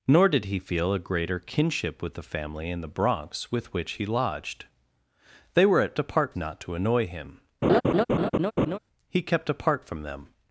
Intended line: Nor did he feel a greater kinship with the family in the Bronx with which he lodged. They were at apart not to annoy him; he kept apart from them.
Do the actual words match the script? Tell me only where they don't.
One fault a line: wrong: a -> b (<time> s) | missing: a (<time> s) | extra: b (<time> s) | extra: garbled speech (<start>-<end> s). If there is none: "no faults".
no faults